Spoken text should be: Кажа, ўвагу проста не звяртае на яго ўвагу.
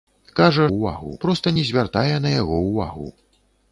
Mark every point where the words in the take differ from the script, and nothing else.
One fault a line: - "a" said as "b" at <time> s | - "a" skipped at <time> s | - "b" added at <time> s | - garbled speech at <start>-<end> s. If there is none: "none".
none